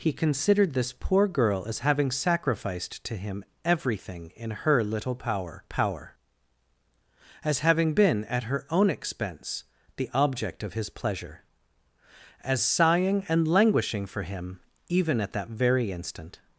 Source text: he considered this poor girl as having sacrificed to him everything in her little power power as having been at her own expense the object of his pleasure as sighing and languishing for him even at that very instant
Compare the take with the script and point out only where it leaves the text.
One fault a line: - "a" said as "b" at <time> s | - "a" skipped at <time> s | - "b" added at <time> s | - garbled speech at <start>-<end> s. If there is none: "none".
none